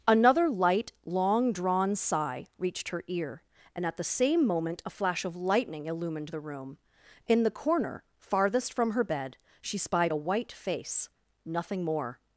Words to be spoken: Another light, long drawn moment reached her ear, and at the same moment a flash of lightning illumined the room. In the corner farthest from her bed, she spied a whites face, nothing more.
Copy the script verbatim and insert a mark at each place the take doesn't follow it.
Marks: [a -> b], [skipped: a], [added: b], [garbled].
Another light, long drawn [moment -> sigh] reached her ear, and at the same moment a flash of lightning illumined the room. In the corner farthest from her bed, she spied a [whites -> white] face, nothing more.